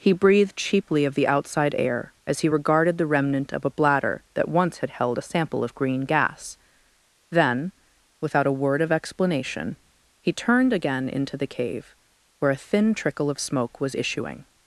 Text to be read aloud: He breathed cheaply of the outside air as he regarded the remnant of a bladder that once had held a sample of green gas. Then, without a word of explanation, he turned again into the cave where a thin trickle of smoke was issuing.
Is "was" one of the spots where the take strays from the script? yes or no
no